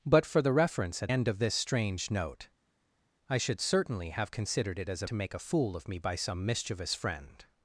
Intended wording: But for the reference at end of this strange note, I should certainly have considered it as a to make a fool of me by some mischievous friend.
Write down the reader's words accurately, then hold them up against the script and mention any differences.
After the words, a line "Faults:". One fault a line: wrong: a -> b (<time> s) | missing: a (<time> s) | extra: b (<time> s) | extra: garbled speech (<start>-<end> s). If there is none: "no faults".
But for the reference at end of this strange note, I should certainly have considered it as a to make a fool of me by some mischievous friend.
Faults:
no faults